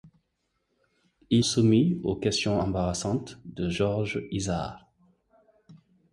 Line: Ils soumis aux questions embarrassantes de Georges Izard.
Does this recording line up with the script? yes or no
yes